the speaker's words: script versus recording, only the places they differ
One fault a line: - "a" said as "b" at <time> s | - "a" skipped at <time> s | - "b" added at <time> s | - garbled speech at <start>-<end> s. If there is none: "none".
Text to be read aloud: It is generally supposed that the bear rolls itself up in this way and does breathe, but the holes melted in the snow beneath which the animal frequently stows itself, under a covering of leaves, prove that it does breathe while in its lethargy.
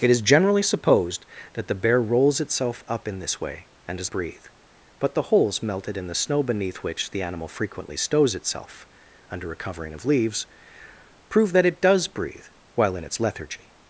none